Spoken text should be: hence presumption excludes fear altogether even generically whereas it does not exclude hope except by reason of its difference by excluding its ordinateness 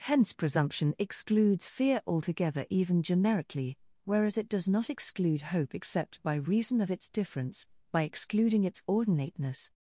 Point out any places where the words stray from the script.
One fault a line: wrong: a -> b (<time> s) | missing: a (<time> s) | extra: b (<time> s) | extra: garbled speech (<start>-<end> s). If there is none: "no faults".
no faults